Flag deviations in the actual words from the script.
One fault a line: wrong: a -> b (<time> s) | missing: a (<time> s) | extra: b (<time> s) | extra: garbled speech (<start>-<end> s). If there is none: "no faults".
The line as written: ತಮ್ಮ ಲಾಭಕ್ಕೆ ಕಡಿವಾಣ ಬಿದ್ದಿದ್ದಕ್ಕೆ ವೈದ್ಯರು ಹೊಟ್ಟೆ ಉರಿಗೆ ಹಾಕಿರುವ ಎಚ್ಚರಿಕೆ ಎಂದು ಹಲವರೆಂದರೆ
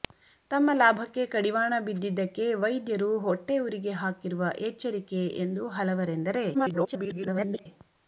extra: garbled speech (6.5-7.7 s)